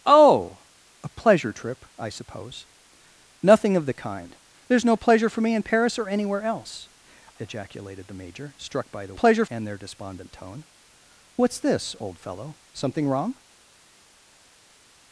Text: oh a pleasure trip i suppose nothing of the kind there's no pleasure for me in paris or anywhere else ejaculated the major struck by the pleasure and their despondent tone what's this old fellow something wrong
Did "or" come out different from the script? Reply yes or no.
no